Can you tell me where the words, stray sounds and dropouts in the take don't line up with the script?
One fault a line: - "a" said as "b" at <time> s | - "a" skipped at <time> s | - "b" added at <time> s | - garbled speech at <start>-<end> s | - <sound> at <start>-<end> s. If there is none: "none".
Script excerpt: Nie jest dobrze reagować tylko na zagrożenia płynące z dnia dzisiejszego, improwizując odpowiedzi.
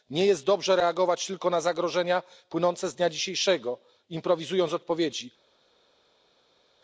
none